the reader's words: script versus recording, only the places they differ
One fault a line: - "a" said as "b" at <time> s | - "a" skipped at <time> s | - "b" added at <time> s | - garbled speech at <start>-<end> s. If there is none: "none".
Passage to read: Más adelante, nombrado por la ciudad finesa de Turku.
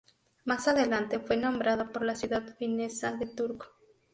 - "fue" added at 1.2 s